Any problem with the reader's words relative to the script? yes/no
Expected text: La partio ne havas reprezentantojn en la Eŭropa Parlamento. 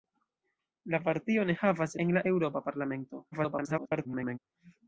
yes